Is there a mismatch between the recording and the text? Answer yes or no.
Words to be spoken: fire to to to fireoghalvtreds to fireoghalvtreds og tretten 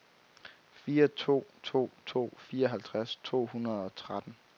yes